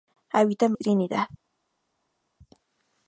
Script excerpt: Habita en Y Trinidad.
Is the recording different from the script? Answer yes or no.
no